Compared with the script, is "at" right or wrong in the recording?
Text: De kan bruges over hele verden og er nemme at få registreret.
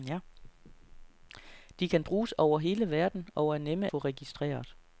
wrong